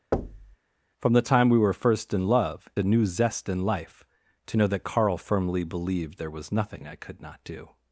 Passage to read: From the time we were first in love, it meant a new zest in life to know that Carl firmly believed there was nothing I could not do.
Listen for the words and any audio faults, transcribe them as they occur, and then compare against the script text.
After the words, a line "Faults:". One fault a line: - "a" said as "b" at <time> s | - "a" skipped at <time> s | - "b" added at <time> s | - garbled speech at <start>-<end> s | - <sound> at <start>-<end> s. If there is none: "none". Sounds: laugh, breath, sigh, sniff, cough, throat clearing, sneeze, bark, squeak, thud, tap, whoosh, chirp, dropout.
From the time we were first in love, a new zest in life to know that Carl firmly believed there was nothing I could not do.
Faults:
- thud at 0.1-0.6 s
- "it meant" skipped at 2.7 s